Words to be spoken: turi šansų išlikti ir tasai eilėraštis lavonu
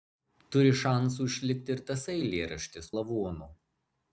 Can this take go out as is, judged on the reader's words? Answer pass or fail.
pass